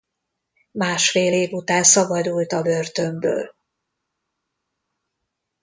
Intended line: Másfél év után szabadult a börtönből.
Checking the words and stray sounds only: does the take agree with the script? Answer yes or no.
yes